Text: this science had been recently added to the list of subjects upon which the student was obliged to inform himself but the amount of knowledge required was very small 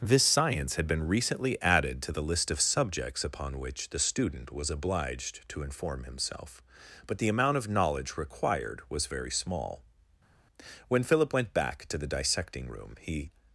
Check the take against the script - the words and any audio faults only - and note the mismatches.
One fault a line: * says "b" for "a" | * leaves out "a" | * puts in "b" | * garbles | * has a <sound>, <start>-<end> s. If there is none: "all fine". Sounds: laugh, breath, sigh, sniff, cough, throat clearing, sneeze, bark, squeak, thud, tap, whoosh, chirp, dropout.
* puts in "when philip went back to the dissecting room he"